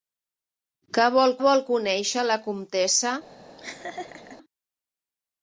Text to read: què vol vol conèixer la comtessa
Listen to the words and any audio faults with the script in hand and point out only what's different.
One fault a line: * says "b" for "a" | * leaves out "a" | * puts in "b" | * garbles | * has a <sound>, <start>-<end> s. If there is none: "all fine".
* has a laugh, 3.6-4.4 s